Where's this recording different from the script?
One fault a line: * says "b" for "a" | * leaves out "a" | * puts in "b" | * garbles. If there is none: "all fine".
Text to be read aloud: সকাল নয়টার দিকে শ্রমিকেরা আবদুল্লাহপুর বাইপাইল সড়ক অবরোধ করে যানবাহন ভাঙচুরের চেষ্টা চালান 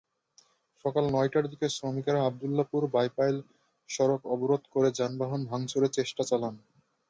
all fine